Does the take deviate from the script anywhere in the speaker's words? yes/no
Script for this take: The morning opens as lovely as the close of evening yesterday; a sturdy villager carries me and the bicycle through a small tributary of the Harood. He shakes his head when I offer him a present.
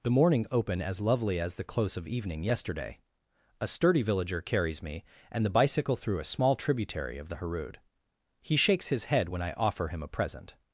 yes